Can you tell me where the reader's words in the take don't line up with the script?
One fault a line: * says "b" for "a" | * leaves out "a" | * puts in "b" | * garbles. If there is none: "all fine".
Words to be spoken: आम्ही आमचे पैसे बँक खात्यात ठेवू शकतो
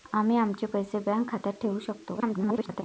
* garbles